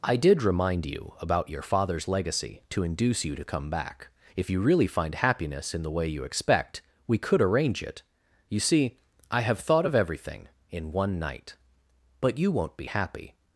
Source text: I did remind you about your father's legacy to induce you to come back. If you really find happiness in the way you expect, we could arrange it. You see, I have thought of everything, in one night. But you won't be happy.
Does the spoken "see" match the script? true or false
true